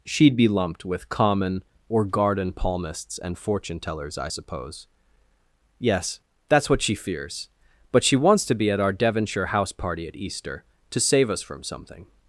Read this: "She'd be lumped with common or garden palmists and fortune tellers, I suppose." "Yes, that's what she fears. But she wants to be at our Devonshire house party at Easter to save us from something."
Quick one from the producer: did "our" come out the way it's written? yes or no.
yes